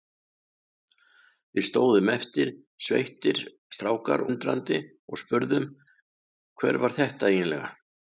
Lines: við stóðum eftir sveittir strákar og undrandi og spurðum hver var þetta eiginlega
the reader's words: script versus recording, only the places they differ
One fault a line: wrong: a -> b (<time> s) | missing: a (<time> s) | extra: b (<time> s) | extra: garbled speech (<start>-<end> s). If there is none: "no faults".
missing: og (4.2 s)